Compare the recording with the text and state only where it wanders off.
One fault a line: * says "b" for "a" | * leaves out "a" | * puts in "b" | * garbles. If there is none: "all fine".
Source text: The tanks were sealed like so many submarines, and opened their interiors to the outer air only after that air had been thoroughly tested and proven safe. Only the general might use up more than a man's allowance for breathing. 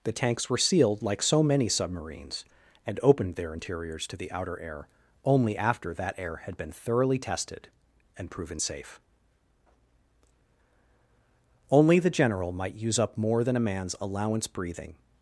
* leaves out "for"